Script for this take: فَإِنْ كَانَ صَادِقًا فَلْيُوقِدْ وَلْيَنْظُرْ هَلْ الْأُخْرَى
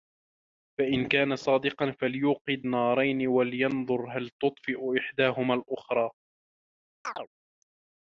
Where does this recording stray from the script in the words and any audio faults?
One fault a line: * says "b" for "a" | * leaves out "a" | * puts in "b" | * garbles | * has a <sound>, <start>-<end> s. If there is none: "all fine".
* puts in "نَارَيْنِ"
* puts in "تُطْفِئُ إحْدَاهُمَا"
* has a chirp, 7.0-7.3 s